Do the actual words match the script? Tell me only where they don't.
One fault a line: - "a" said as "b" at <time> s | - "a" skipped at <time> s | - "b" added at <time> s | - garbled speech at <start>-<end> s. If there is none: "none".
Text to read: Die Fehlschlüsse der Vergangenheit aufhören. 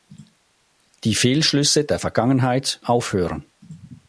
none